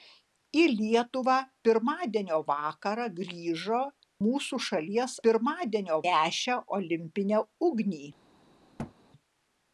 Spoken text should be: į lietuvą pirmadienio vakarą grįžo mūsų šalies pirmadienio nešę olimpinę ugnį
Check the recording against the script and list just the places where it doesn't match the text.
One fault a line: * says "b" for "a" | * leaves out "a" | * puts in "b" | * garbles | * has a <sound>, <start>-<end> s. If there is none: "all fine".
* has a thud, 8.8-9.0 s